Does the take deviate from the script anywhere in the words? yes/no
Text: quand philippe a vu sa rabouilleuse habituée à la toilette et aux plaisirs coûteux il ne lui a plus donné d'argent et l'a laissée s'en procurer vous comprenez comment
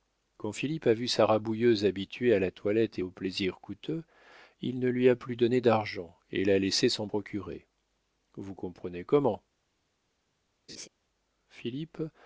no